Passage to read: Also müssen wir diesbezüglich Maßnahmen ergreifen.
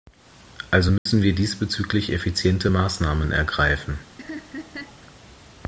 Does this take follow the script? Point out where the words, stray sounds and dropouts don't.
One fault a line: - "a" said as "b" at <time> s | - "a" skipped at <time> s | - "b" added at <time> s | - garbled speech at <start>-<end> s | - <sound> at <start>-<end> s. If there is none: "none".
- dropout at 1.0-1.1 s
- "effiziente" added at 2.1 s
- laugh at 4.2-5.0 s